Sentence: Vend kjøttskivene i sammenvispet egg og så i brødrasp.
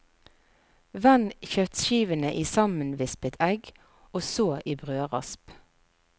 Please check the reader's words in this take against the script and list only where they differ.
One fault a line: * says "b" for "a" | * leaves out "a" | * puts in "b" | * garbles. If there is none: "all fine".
all fine